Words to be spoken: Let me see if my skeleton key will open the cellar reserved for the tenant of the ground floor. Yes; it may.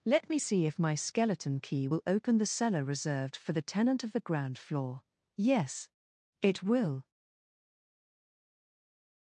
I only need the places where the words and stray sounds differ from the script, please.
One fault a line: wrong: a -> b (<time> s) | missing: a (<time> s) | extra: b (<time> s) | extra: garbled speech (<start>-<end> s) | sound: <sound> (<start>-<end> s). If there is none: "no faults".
wrong: may -> will (6.6 s)